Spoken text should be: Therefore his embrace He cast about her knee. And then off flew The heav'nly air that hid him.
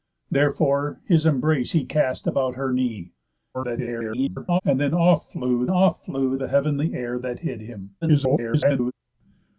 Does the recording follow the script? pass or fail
fail